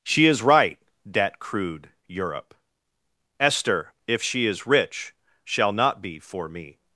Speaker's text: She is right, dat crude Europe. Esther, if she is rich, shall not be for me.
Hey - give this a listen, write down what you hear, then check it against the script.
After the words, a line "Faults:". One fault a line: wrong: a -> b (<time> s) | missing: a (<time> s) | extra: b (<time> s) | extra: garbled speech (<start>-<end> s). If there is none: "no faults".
She is right, dat crude Europe. Esther, if she is rich, shall not be for me.
Faults:
no faults